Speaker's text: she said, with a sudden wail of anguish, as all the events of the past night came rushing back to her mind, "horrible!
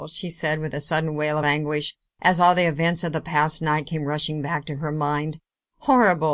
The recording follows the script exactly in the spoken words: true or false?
true